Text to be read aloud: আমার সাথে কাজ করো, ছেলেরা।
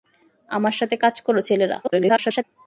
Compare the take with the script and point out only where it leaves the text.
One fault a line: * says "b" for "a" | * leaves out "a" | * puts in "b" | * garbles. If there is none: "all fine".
* garbles